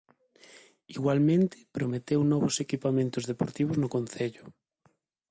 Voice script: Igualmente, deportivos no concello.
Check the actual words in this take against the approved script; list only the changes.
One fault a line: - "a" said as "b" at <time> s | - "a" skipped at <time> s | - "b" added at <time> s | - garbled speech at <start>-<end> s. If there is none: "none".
- "prometeu novos equipamentos" added at 1.8 s